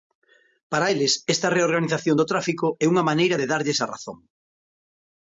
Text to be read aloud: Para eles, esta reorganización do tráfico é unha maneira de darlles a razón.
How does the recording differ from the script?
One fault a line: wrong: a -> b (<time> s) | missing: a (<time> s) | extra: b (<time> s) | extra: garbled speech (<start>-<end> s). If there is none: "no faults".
no faults